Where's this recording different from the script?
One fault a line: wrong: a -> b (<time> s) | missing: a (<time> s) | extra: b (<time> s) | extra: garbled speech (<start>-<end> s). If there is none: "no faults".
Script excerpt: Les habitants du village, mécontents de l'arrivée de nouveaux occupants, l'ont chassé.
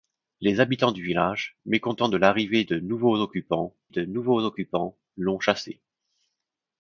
extra: de nouveaux occupants (3.9 s)